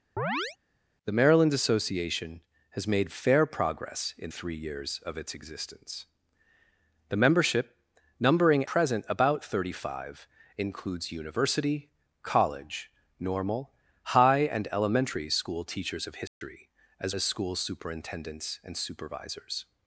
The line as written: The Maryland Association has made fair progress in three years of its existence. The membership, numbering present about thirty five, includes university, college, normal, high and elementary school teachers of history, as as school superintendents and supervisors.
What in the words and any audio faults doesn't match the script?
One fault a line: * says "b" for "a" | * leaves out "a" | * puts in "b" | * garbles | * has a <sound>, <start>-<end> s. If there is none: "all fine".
* has a chirp, 0.2-0.6 s
* has a dropout, 16.3-16.4 s